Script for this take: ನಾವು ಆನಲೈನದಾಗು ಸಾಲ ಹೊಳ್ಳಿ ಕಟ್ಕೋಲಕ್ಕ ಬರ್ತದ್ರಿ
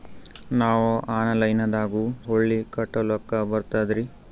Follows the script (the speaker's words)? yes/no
no